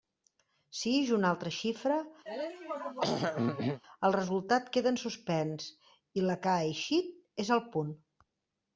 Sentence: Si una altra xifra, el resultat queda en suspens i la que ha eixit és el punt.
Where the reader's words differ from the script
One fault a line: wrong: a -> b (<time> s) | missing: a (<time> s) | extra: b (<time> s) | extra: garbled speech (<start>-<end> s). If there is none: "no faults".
extra: ix (1.0 s)